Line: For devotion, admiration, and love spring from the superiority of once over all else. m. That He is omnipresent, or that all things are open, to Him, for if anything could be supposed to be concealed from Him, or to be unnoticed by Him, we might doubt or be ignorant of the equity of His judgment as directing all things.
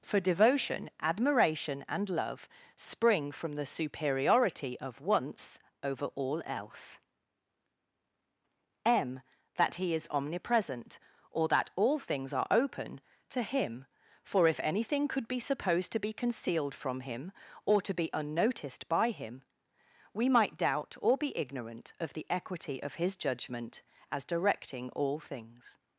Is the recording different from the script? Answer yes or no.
no